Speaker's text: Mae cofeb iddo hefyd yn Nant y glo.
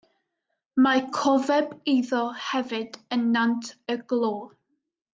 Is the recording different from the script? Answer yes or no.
no